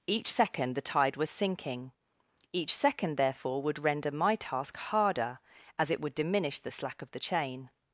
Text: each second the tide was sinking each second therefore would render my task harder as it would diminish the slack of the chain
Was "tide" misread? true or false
false